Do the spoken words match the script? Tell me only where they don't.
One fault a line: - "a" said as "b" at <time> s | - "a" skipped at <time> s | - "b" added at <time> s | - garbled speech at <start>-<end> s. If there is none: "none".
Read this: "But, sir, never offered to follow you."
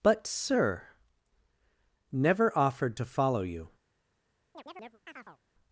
none